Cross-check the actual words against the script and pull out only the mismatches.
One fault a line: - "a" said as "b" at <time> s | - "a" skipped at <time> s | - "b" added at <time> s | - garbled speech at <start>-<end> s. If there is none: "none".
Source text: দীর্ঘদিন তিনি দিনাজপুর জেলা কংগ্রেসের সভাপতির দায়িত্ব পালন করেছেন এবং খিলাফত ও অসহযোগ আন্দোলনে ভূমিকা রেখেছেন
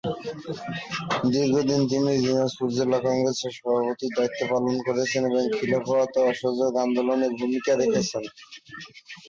none